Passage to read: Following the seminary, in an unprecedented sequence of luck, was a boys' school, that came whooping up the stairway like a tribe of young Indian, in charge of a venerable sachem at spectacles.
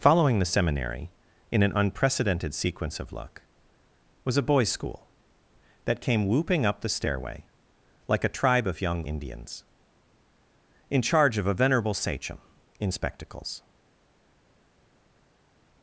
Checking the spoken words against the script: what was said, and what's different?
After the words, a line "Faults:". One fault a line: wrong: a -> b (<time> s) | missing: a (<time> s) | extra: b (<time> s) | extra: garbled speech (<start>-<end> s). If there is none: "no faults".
Following the seminary, in an unprecedented sequence of luck, was a boys' school, that came whooping up the stairway like a tribe of young Indians, in charge of a venerable sachem in spectacles.
Faults:
wrong: Indian -> Indians (9.1 s)
wrong: at -> in (12.8 s)